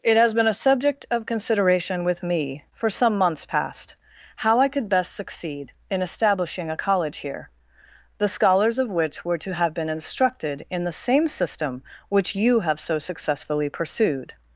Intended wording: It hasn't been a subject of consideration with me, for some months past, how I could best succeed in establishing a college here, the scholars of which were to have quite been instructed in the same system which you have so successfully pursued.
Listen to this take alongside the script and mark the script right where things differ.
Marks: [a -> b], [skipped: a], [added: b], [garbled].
It [hasn't -> has] been a subject of consideration with me, for some months past, how I could best succeed in establishing a college here, the scholars of which were to have [skipped: quite] been instructed in the same system which you have so successfully pursued.